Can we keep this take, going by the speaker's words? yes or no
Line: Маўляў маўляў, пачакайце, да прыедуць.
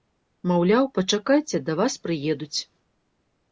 no